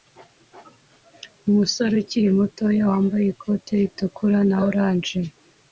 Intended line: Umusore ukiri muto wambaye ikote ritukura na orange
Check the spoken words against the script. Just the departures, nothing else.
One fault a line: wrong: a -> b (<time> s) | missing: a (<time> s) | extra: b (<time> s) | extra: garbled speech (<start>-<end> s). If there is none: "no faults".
no faults